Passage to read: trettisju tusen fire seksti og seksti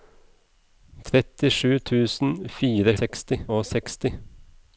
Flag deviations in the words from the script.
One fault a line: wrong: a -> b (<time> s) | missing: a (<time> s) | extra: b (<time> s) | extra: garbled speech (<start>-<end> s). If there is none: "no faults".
no faults